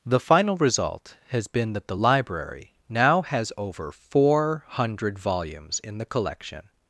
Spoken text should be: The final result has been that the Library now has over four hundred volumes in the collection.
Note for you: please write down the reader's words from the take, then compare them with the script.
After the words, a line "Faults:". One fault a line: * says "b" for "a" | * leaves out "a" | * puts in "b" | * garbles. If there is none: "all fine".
The final result has been that the Library now has over four hundred volumes in the collection.
Faults:
all fine